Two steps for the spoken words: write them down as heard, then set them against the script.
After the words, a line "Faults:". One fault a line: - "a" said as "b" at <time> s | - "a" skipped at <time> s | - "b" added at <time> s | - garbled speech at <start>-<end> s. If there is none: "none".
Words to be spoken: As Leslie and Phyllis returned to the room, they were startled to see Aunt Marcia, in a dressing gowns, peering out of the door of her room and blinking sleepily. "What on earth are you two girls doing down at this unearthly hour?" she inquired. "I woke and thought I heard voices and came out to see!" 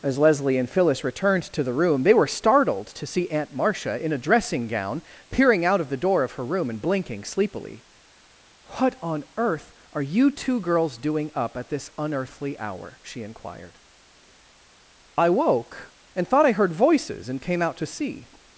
As Leslie and Phyllis returned to the room, they were startled to see Aunt Marcia, in a dressing gown, peering out of the door of her room and blinking sleepily. "What on earth are you two girls doing up at this unearthly hour?" she inquired. "I woke and thought I heard voices and came out to see!"
Faults:
- "gowns" said as "gown" at 4.7 s
- "down" said as "up" at 11.3 s